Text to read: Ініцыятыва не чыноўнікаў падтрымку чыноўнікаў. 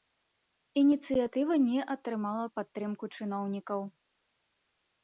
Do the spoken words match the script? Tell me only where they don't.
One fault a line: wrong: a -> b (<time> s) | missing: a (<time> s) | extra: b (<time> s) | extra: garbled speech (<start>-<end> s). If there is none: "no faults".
wrong: чыноўнікаў -> атрымала (2.0 s)